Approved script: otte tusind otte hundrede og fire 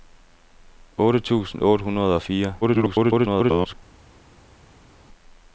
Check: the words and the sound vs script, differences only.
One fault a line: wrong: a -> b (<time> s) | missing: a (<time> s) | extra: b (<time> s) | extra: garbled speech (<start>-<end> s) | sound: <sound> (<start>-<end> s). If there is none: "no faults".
extra: garbled speech (2.6-3.7 s)